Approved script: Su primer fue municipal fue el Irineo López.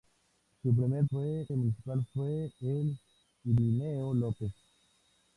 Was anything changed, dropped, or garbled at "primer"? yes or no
no